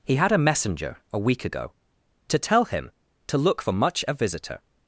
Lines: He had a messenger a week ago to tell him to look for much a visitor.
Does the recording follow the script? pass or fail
pass